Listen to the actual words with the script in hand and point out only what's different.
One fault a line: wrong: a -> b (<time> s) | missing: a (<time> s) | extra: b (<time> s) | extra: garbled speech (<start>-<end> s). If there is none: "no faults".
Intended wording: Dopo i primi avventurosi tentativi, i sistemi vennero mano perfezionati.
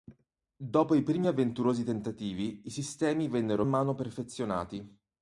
no faults